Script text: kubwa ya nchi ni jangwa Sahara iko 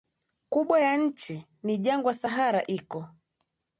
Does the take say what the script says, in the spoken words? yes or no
yes